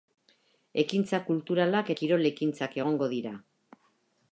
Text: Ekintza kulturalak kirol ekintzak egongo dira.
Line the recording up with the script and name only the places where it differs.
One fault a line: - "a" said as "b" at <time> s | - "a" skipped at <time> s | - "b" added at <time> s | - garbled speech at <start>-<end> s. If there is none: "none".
none